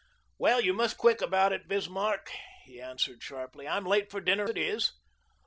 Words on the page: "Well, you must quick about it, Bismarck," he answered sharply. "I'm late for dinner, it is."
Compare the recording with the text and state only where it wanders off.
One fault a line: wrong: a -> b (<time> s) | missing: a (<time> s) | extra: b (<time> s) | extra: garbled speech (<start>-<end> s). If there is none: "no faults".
no faults